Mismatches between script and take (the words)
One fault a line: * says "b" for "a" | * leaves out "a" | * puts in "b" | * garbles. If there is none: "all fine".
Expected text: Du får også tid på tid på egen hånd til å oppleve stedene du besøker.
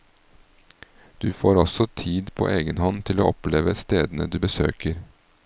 * leaves out "tid på"